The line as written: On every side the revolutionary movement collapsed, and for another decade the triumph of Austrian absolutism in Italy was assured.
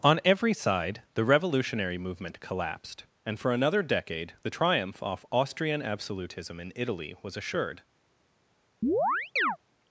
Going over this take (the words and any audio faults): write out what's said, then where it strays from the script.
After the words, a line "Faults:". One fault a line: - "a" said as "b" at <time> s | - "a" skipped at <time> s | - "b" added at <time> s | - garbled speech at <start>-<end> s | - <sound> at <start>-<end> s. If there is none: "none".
On every side the revolutionary movement collapsed, and for another decade the triumph off Austrian absolutism in Italy was assured.
Faults:
- "of" said as "off" at 5.0 s
- chirp at 8.8-9.6 s